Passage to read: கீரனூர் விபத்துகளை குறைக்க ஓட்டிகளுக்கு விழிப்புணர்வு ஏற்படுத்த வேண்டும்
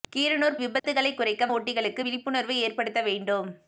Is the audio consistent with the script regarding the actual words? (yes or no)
yes